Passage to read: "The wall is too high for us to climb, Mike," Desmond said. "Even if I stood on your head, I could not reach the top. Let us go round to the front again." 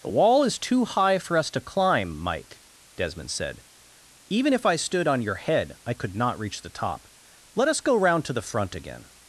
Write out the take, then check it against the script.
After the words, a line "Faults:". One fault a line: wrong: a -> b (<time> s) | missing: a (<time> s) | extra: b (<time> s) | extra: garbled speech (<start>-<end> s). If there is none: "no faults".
"The wall is too high for us to climb, Mike," Desmond said. "Even if I stood on your head, I could not reach the top. Let us go round to the front again."
Faults:
no faults